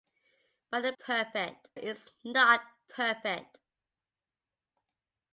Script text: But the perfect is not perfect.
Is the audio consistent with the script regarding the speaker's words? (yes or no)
yes